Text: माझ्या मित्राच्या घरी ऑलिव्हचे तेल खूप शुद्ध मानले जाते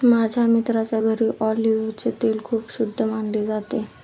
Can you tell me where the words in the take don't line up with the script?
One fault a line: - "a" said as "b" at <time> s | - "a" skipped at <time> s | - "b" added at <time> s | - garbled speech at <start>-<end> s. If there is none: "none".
none